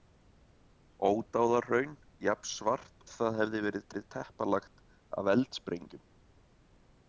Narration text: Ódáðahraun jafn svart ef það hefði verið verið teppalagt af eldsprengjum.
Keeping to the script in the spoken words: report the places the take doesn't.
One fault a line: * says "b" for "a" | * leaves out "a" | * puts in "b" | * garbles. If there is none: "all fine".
all fine